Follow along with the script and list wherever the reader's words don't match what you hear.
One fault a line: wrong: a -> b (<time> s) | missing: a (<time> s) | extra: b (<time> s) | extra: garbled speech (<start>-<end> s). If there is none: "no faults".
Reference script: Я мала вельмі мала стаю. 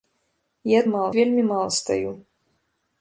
no faults